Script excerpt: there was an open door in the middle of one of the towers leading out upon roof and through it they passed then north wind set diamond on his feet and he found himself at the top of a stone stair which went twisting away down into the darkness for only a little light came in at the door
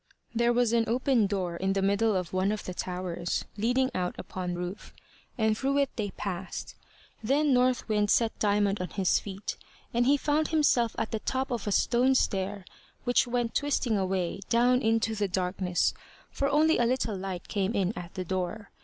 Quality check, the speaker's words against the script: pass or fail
pass